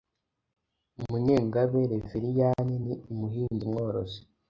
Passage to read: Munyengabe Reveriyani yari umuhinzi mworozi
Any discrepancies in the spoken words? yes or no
yes